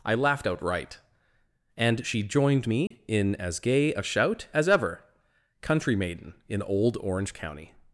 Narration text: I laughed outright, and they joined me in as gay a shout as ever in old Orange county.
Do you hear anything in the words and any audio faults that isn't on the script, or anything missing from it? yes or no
yes